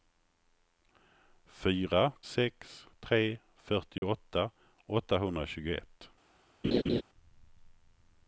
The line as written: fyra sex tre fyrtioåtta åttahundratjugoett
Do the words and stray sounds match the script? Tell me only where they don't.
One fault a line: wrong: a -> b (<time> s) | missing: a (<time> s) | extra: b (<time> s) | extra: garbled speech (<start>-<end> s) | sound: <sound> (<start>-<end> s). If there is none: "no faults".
sound: dropout (4.0-4.0 s)
sound: laugh (6.6-7.0 s)